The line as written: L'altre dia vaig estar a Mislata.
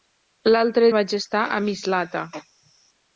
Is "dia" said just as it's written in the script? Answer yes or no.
no